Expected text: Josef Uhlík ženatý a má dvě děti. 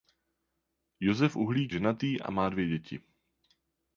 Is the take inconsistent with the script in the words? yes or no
no